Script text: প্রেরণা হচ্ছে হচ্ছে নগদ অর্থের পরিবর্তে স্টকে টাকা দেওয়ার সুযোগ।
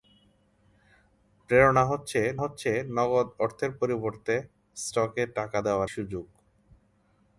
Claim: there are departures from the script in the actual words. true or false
false